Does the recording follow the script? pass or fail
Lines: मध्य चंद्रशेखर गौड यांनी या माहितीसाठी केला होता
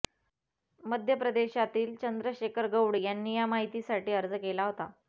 fail